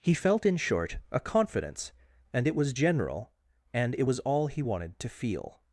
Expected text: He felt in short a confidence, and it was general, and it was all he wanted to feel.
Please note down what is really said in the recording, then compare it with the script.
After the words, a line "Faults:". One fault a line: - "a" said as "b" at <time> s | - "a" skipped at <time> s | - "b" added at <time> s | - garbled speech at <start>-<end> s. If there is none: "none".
He felt in short a confidence, and it was general, and it was all he wanted to feel.
Faults:
none